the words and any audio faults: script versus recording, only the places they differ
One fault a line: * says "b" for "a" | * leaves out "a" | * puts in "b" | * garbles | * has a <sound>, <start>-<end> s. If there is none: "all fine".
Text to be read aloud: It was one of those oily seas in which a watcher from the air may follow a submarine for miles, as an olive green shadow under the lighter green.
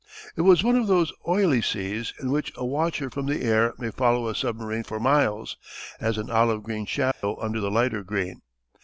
* has a dropout, 7.1-7.2 s